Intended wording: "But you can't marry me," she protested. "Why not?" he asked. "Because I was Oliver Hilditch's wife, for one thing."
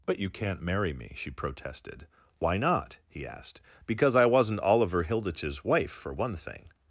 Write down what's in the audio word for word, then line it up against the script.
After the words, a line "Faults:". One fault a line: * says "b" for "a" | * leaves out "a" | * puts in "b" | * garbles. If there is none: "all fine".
"But you can't marry me," she protested. "Why not?" he asked. "Because I wasn't Oliver Hilditch's wife, for one thing."
Faults:
* says "wasn't" for "was"